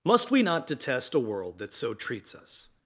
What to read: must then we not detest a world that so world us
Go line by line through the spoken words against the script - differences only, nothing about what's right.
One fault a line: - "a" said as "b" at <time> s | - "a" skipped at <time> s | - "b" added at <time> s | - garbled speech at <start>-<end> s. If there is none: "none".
- "then" skipped at 0.3 s
- "world" said as "treats" at 1.9 s